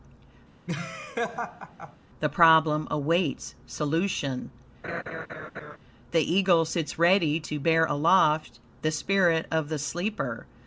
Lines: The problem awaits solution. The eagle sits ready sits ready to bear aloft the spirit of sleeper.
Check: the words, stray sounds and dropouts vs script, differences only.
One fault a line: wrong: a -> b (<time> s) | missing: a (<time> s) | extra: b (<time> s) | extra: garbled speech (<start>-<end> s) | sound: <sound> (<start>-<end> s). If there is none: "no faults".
sound: laugh (0.7-2.0 s)
sound: laugh (4.8-5.8 s)
missing: sits ready (7.4 s)
extra: the (9.7 s)